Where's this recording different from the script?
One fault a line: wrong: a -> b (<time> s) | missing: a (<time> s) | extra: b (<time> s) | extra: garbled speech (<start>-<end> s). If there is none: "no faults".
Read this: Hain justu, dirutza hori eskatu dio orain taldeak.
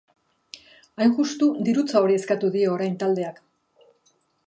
no faults